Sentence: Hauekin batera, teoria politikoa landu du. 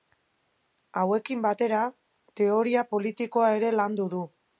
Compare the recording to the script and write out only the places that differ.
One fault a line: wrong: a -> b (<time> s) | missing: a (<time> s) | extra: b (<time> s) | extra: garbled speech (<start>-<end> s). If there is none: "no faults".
extra: ere (3.6 s)